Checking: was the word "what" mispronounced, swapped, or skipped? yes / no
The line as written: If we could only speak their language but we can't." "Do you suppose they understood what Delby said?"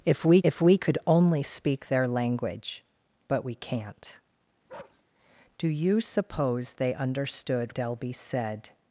yes